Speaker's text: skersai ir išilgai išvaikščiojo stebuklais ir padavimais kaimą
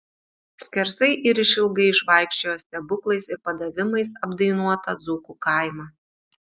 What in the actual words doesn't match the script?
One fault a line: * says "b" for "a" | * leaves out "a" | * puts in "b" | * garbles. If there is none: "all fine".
* puts in "apdainuotą dzūkų"